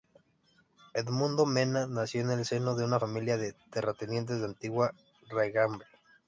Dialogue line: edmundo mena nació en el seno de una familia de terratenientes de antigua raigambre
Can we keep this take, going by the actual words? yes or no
yes